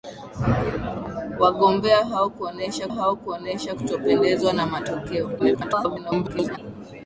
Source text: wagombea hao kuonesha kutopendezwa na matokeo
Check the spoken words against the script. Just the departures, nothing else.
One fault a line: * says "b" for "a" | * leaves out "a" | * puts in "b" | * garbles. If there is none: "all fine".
* puts in "hao kuonesha"
* garbles